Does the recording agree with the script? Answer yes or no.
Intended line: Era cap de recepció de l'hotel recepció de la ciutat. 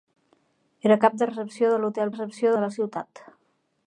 yes